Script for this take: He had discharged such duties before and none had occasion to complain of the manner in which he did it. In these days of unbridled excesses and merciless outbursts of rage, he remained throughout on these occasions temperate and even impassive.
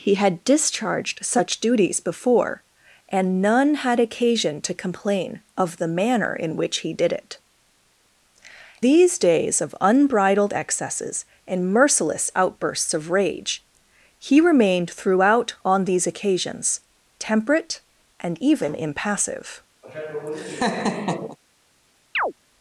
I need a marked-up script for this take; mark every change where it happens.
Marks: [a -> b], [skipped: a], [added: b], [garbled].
He had discharged such duties before and none had occasion to complain of the manner in which he did it. [skipped: In] these days of unbridled excesses and merciless outbursts of rage, he remained throughout on these occasions temperate and even impassive.